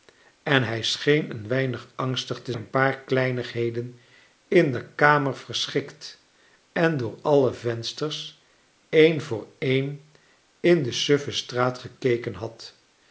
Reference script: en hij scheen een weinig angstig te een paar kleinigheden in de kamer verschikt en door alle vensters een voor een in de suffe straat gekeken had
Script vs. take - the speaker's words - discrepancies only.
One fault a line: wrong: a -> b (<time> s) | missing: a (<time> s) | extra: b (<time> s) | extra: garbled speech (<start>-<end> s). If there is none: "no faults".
no faults